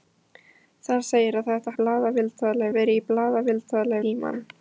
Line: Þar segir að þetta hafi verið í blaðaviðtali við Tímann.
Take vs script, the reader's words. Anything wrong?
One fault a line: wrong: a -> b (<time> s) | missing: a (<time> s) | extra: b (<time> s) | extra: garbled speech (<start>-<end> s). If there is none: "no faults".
wrong: hafi -> blaðaviðtali (1.8 s)
missing: við (4.0 s)